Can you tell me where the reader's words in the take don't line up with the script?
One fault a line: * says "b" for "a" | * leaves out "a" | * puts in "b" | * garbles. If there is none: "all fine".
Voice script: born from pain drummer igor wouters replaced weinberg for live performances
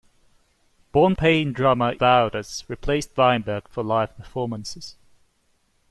* leaves out "from"
* leaves out "igor"